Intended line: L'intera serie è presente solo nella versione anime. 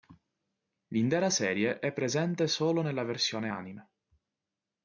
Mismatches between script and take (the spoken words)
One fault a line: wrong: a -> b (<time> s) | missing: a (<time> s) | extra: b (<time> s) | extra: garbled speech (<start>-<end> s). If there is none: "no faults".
no faults